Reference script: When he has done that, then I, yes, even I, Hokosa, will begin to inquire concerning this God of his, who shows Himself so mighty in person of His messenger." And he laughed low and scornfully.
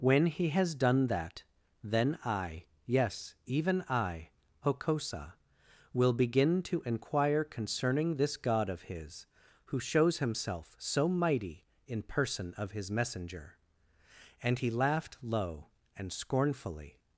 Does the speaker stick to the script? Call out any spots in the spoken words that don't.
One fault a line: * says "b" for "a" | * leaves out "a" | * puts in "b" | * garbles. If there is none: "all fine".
all fine